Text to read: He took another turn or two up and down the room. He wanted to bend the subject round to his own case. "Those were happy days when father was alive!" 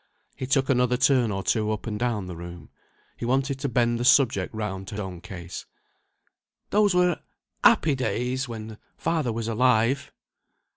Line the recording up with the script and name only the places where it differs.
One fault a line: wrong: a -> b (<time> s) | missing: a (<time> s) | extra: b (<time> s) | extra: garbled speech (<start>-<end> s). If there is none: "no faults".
missing: his (5.0 s)